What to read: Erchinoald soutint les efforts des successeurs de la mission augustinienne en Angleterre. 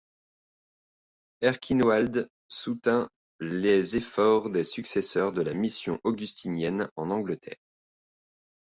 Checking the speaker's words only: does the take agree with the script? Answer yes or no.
yes